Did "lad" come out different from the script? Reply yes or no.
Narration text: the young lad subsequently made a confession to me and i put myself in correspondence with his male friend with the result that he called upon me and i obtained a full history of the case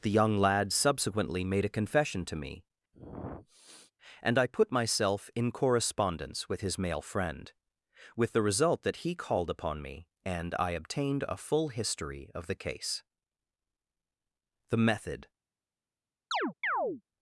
no